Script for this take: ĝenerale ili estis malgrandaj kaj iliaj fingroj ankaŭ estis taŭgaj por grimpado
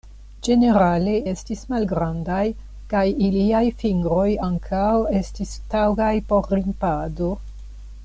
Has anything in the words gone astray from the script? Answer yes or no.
yes